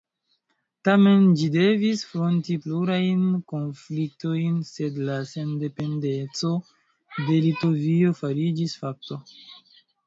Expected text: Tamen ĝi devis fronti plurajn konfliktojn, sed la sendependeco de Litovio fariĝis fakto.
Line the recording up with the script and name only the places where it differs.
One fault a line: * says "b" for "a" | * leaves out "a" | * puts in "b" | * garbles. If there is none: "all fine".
all fine